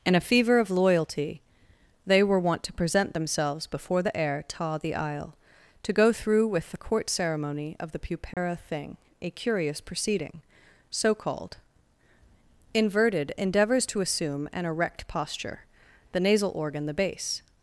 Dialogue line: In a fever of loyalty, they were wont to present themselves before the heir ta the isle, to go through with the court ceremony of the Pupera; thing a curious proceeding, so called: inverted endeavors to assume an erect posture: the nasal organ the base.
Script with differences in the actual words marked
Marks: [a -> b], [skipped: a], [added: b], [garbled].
In a fever of loyalty, they were wont to present themselves before the heir ta the isle, to go through with the court ceremony of the Pupera; thing a curious proceeding, so called: inverted endeavors to assume an erect posture: the nasal organ the base.